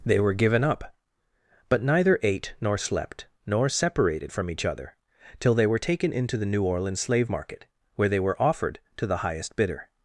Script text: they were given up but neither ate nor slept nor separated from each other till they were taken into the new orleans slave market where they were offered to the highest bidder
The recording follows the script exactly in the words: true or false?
true